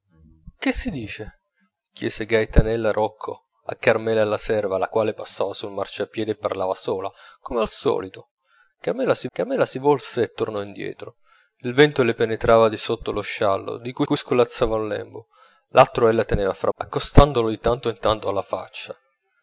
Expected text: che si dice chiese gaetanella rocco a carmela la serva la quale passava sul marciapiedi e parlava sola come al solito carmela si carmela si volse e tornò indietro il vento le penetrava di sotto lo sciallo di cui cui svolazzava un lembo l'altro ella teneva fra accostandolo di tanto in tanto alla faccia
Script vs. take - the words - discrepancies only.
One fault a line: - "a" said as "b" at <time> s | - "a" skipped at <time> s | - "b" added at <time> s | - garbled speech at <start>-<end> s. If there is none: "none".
none